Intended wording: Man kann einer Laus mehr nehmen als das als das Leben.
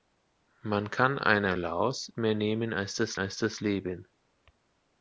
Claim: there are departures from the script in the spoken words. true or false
false